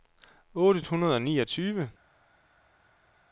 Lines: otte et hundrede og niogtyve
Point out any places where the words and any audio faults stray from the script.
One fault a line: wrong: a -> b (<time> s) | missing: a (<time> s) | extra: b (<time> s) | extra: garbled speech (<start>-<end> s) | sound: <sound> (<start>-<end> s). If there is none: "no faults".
no faults